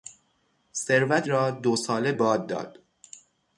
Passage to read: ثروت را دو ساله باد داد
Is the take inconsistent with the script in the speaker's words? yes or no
no